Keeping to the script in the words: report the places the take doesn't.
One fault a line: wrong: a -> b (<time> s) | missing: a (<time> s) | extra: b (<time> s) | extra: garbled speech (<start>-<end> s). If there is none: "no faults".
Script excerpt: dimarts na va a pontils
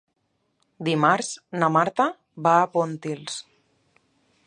extra: marta (1.8 s)